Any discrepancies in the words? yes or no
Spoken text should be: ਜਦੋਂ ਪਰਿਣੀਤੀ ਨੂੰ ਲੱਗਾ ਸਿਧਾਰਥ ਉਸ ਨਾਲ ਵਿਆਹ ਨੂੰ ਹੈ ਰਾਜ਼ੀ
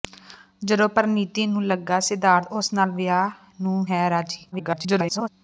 yes